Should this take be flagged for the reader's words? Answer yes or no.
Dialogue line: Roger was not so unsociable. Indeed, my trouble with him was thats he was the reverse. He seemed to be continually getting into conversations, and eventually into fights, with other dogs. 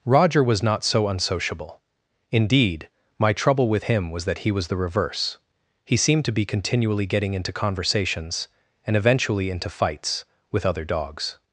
yes